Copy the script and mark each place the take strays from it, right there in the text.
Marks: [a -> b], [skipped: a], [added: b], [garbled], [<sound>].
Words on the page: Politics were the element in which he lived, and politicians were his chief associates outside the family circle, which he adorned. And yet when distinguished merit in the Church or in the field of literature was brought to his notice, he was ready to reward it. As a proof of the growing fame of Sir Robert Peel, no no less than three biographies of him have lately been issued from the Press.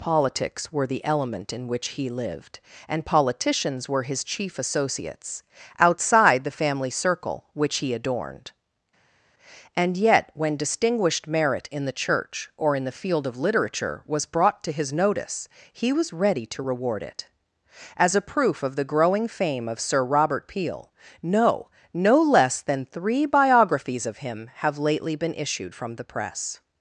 Politics were the element in which he lived, and politicians were his chief associates outside the family circle, which he adorned. And yet when distinguished merit in the Church or in the field of literature was brought to his notice, he was ready to reward it. As a proof of the growing fame of Sir Robert Peel, no no less than three biographies of him have lately been issued from the Press.